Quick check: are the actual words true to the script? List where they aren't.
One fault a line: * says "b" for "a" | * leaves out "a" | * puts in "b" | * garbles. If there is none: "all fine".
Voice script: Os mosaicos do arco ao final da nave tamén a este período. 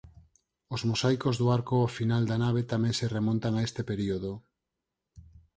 * puts in "se remontan"